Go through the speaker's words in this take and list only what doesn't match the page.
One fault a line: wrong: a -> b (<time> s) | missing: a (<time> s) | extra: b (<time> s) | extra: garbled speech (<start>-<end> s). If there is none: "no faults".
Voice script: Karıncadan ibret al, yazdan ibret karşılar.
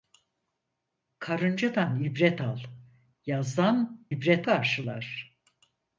no faults